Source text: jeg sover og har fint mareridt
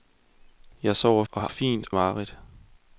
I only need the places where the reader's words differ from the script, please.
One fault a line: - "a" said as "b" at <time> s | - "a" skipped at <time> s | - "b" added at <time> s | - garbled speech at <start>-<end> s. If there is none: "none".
none